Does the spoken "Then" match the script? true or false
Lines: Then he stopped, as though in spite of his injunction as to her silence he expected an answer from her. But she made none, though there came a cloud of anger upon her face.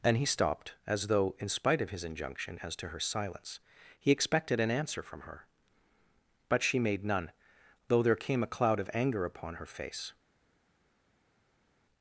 false